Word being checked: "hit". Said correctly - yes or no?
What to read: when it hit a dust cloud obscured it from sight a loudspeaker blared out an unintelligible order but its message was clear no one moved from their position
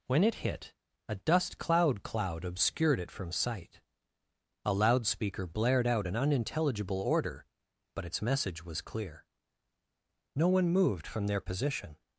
yes